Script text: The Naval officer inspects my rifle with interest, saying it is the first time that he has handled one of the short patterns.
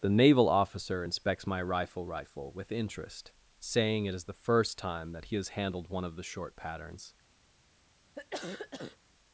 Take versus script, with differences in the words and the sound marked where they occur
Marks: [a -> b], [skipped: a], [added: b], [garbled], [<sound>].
The Naval officer inspects my rifle [added: rifle] with interest, saying it is the first time that he has handled one of the short patterns. [cough]